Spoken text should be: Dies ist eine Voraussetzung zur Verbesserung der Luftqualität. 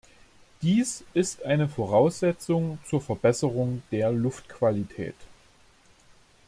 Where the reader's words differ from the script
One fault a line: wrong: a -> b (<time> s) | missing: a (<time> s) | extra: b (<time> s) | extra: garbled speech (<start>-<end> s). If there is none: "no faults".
no faults